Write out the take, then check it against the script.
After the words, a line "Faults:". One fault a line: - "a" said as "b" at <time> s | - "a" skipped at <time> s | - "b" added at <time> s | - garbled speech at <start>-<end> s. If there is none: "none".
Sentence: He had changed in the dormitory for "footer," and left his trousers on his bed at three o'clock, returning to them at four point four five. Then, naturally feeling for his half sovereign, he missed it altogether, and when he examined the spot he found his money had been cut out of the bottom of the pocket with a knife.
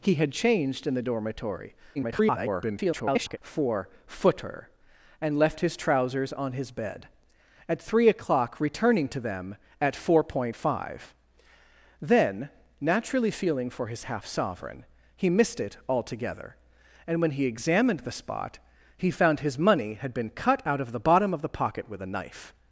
He had changed in the dormitory [garbled] for "footer," and left his trousers on his bed at three o'clock, returning to them at four point five. Then, naturally feeling for his half sovereign, he missed it altogether, and when he examined the spot he found his money had been cut out of the bottom of the pocket with a knife.
Faults:
- garbled speech at 1.9-3.4 s
- "four" skipped at 10.6 s